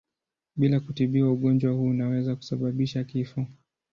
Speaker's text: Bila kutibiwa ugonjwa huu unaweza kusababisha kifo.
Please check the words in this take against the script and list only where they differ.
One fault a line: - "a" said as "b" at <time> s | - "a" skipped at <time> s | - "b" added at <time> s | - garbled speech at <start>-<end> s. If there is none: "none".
none